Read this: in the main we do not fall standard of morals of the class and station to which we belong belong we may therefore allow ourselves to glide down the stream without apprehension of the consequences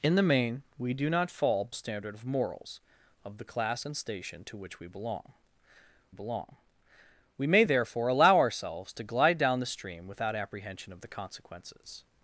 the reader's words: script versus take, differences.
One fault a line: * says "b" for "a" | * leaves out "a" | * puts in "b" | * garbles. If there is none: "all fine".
all fine